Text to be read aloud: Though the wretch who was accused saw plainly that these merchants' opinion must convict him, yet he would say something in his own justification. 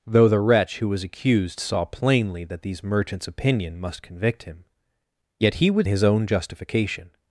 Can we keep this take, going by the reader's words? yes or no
no